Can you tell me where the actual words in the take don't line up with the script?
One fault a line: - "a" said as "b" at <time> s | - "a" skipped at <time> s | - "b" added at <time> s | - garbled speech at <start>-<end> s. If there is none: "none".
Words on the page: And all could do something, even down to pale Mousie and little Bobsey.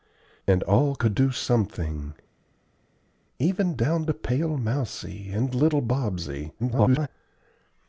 - garbled speech at 6.6-7.1 s